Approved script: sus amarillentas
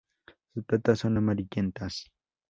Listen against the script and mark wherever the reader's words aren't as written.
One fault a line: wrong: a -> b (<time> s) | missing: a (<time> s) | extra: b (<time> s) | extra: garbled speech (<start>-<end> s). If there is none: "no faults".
extra: patas son (0.7 s)